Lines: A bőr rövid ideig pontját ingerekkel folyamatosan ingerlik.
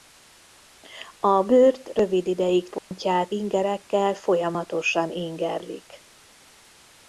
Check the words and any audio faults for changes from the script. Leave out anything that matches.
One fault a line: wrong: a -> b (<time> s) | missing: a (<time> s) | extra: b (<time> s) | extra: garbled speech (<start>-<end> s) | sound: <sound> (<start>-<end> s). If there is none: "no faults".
sound: dropout (2.8-2.9 s)